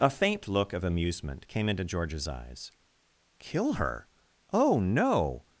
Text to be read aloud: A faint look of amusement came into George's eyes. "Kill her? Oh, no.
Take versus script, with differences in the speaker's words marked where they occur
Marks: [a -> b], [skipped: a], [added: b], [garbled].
A faint look of amusement came into George's eyes. "Kill her? Oh, no.